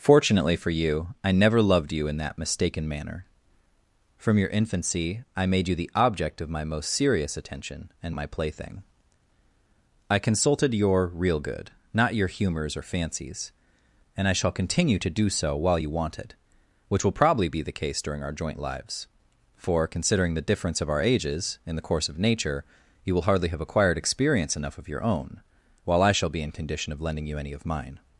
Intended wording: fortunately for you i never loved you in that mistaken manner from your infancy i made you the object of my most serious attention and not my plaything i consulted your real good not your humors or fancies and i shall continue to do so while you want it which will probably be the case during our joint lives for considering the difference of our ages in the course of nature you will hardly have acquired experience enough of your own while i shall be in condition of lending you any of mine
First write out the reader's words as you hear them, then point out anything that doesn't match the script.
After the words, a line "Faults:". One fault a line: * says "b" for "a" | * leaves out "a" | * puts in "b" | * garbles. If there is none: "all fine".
fortunately for you i never loved you in that mistaken manner from your infancy i made you the object of my most serious attention and my plaything i consulted your real good not your humors or fancies and i shall continue to do so while you want it which will probably be the case during our joint lives for considering the difference of our ages in the course of nature you will hardly have acquired experience enough of your own while i shall be in condition of lending you any of mine
Faults:
* leaves out "not"